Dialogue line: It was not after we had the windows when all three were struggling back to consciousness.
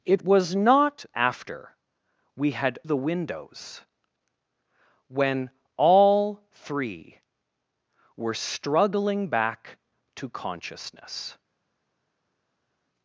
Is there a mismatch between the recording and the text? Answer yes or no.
no